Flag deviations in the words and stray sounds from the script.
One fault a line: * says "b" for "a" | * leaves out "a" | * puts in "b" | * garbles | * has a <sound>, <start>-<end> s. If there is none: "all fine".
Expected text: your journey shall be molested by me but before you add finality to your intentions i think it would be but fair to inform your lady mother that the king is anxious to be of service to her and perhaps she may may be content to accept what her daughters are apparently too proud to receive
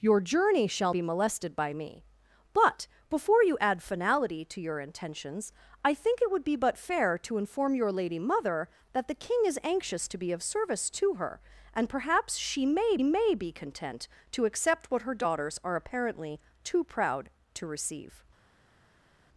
all fine